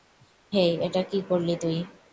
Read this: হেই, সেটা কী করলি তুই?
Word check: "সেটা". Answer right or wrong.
wrong